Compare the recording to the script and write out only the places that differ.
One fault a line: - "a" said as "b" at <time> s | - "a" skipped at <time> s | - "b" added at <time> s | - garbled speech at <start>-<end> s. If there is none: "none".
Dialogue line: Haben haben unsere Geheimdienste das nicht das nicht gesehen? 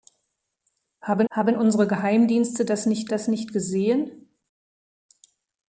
none